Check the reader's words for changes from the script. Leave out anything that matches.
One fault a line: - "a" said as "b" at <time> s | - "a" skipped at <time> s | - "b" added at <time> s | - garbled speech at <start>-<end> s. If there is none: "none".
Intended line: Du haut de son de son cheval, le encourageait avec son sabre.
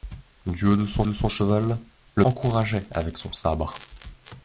none